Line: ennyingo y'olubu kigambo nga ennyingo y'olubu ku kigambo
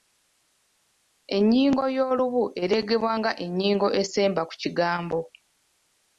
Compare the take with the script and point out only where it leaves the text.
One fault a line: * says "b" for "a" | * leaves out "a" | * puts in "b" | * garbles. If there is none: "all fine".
* says "ereegebwa" for "kigambo"
* says "esemba" for "y'olubu"